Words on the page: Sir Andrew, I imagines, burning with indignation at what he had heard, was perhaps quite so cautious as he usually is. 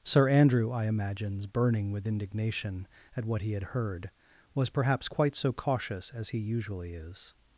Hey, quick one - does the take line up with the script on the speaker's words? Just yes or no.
yes